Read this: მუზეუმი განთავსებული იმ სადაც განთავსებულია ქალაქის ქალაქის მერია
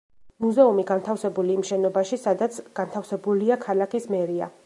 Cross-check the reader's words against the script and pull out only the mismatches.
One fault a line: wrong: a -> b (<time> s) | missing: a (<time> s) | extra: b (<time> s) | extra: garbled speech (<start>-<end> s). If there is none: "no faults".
extra: შენობაში (1.7 s)
missing: ქალაქის (4.1 s)